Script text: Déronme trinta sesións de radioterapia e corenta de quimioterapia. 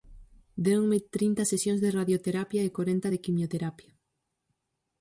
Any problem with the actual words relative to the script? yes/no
no